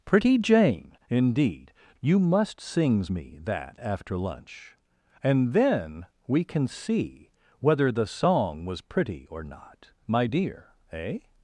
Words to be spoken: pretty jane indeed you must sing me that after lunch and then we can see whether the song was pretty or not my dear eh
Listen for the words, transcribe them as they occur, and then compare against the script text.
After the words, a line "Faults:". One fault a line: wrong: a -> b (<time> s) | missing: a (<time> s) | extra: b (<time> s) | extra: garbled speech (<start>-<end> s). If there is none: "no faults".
pretty jane indeed you must sings me that after lunch and then we can see whether the song was pretty or not my dear eh
Faults:
wrong: sing -> sings (2.6 s)